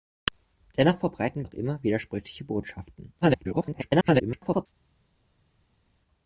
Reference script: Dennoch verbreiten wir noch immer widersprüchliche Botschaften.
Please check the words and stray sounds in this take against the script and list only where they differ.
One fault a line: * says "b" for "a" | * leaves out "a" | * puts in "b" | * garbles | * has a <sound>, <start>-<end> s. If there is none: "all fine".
* leaves out "wir"
* garbles